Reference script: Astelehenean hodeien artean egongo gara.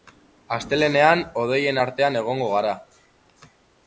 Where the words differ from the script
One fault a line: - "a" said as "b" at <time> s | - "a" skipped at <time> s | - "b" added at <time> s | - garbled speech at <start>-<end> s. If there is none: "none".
none